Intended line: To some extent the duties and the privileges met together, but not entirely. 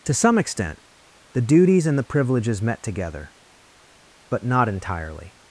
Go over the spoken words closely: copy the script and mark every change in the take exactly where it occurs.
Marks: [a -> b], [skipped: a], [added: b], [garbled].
To some extent the duties and the privileges met together, but not entirely.